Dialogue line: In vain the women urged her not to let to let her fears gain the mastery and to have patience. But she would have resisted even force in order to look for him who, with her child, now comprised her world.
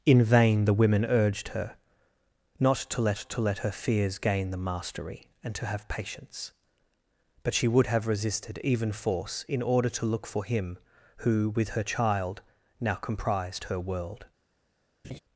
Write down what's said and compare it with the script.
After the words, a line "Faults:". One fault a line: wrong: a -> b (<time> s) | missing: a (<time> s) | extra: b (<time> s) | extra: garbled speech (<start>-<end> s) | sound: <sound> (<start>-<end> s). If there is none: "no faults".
In vain the women urged her not to let to let her fears gain the mastery and to have patience. But she would have resisted even force in order to look for him who, with her child, now comprised her world.
Faults:
sound: laugh (15.0-15.2 s)